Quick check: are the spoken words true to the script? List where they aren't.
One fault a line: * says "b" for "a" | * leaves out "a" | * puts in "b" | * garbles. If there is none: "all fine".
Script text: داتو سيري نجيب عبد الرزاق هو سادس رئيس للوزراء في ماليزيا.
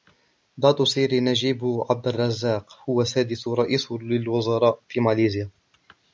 all fine